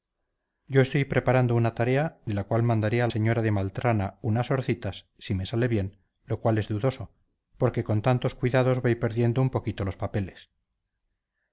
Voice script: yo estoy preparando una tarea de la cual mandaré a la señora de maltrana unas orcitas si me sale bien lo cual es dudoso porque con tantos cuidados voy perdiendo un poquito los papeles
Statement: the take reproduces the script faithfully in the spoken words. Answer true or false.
false